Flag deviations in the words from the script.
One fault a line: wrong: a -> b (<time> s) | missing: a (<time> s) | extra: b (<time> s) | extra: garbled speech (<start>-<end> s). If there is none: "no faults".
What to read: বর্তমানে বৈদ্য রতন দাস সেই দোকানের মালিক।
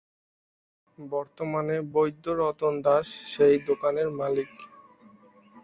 no faults